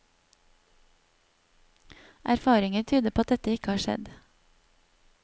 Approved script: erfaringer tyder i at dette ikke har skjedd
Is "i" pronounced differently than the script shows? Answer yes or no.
yes